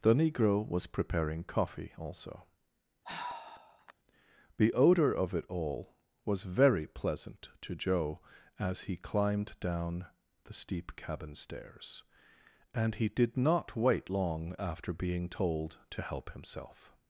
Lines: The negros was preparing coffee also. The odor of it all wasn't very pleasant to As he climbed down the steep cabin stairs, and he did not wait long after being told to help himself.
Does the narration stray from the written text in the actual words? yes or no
yes